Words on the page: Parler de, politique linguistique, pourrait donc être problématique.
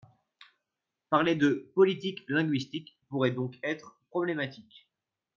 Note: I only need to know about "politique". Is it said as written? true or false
true